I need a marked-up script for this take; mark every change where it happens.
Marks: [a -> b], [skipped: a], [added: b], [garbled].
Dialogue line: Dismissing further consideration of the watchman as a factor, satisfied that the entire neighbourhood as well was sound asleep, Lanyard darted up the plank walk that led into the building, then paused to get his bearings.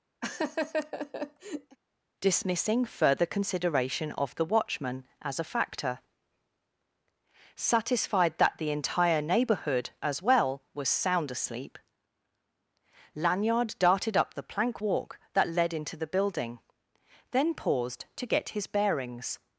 Dismissing further consideration of the watchman as a factor, satisfied that the entire neighbourhood as well was sound asleep, Lanyard darted up the plank walk that led into the building, then paused to get his bearings.